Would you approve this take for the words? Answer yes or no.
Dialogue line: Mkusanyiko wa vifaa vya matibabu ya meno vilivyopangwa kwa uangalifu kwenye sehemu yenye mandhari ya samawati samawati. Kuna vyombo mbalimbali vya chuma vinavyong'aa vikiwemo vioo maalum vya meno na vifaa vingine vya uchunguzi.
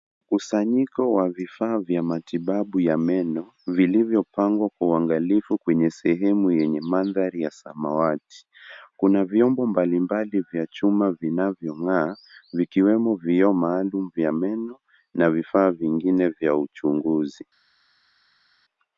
no